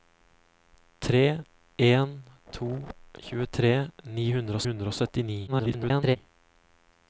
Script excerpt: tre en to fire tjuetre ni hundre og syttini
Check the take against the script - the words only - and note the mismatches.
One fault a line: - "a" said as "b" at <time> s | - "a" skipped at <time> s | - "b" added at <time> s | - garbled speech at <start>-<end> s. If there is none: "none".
- "fire" skipped at 2.7 s
- "hundre" added at 4.7 s
- garbled speech at 5.5-6.2 s